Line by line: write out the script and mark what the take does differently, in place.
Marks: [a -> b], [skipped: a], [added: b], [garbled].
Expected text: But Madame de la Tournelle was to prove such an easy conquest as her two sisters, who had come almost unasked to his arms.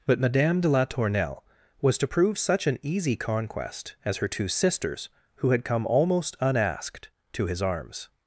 But Madame de la Tournelle was to prove such an easy conquest as her two sisters, who had come almost unasked to his arms.